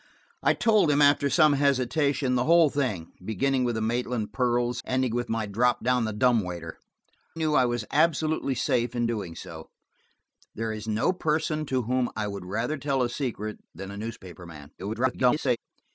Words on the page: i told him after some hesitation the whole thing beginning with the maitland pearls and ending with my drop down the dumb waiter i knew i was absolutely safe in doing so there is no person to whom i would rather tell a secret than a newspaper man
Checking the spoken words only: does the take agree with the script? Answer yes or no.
no